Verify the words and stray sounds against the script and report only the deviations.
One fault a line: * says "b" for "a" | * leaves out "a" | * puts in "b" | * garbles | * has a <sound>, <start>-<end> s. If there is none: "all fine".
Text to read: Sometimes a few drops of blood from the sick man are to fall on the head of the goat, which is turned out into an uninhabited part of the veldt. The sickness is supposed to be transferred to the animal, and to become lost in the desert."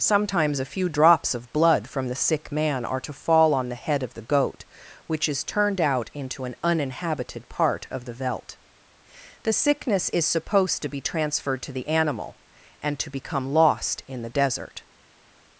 all fine